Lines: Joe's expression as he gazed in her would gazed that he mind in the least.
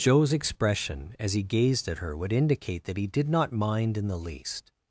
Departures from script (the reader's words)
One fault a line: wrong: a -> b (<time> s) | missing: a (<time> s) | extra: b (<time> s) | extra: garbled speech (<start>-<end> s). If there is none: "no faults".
wrong: in -> at (1.9 s)
wrong: gazed -> indicate (2.3 s)
extra: did not (3.0 s)